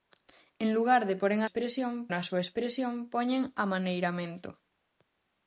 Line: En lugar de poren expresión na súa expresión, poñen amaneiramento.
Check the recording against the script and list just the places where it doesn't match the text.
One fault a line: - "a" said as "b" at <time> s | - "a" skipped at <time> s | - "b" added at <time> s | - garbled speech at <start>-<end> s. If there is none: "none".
none